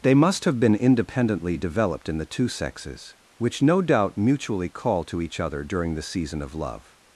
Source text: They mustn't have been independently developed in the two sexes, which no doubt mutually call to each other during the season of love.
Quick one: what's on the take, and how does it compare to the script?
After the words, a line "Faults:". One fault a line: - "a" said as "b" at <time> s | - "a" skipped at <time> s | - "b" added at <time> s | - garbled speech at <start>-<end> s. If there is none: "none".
They must have been independently developed in the two sexes, which no doubt mutually call to each other during the season of love.
Faults:
- "mustn't" said as "must" at 0.1 s